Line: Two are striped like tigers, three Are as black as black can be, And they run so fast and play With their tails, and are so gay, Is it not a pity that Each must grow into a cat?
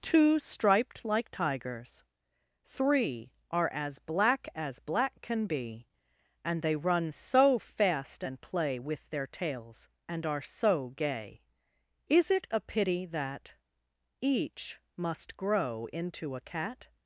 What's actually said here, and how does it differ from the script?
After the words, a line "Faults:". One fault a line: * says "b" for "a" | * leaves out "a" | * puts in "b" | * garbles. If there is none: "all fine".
Two striped like tigers, three Are as black as black can be, And they run so fast and play With their tails, and are so gay, Is it a pity that Each must grow into a cat?
Faults:
* leaves out "are"
* leaves out "not"